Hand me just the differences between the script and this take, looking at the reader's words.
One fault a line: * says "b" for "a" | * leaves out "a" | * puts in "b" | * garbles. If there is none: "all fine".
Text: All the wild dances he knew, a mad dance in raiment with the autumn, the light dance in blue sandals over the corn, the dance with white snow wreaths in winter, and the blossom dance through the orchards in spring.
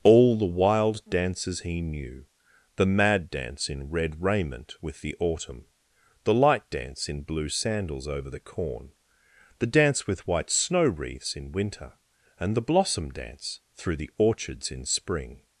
* says "the" for "a"
* puts in "red"